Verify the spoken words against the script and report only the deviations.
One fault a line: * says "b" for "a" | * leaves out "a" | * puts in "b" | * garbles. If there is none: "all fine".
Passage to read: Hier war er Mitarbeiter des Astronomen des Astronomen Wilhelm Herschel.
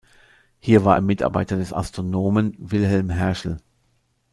* leaves out "des Astronomen"